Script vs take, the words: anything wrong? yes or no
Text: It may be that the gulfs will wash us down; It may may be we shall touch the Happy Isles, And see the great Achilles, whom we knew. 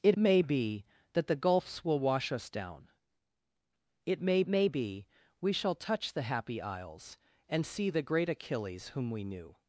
no